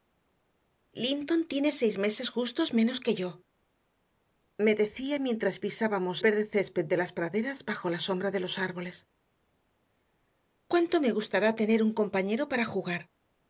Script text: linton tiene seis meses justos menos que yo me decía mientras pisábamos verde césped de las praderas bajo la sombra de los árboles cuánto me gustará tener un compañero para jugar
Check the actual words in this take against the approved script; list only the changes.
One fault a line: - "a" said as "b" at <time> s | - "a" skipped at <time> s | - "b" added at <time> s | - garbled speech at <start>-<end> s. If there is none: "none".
none